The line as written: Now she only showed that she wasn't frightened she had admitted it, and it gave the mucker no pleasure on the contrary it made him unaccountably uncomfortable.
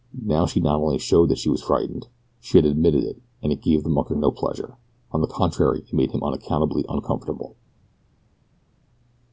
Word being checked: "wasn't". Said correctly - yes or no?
no